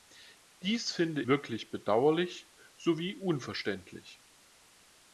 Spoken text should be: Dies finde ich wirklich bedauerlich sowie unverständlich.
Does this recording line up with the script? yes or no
no